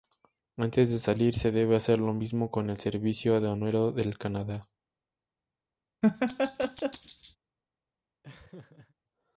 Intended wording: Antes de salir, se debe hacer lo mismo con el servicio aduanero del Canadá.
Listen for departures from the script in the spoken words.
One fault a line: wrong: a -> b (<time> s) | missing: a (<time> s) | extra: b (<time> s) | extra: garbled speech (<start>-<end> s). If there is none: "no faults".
no faults